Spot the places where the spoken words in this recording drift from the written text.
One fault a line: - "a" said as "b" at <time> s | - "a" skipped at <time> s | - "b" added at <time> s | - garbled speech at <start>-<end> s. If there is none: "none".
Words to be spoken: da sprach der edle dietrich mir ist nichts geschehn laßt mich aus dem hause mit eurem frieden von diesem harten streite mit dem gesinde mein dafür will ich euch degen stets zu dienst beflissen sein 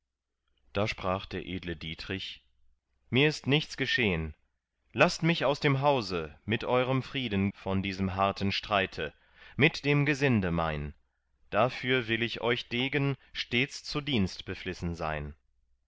none